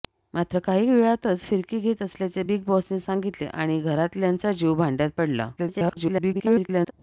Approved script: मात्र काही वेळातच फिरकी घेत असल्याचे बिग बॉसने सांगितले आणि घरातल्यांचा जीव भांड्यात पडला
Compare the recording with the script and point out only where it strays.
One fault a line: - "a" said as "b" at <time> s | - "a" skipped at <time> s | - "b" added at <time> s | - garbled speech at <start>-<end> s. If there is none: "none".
- garbled speech at 5.6-6.9 s